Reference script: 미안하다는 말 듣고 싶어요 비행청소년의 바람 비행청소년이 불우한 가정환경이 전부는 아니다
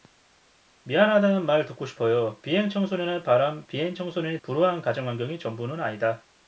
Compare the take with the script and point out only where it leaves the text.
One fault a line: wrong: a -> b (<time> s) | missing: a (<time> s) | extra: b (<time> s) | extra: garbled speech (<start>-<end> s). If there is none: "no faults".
no faults